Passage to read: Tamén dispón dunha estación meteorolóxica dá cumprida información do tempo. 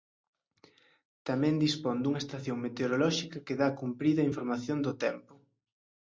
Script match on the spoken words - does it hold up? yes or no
no